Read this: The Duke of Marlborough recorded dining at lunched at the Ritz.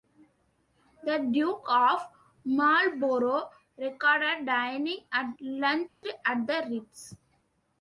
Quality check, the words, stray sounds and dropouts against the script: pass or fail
fail